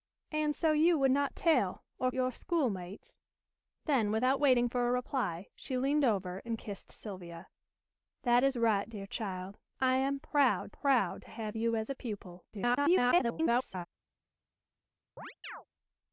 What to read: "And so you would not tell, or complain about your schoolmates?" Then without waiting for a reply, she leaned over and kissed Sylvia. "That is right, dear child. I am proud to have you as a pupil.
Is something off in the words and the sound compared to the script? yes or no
yes